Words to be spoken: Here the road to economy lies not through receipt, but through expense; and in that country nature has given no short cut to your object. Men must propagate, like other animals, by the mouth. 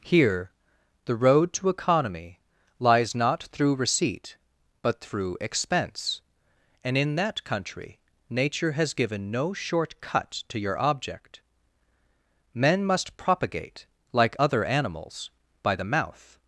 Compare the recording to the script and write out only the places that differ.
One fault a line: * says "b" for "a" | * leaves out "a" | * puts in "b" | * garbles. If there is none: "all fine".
all fine